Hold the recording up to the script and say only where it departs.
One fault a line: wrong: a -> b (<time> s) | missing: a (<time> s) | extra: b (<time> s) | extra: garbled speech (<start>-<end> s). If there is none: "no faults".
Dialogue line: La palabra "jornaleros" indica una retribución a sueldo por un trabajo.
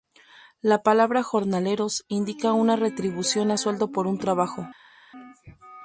no faults